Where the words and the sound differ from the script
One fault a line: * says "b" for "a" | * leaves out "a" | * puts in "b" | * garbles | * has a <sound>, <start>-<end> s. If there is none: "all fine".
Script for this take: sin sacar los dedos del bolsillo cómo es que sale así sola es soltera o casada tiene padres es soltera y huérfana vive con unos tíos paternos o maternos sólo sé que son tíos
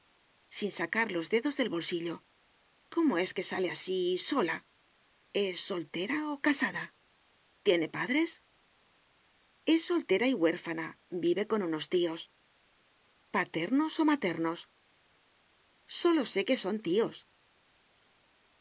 all fine